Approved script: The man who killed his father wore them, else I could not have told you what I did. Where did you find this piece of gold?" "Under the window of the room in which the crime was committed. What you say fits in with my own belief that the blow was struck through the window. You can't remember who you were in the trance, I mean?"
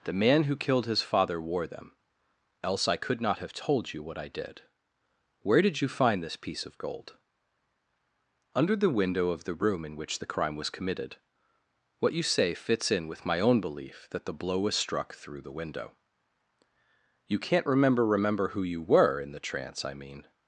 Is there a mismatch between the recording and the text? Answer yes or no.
yes